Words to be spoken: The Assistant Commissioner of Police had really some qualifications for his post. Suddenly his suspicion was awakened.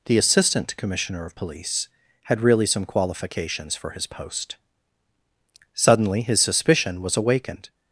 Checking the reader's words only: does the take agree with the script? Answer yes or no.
yes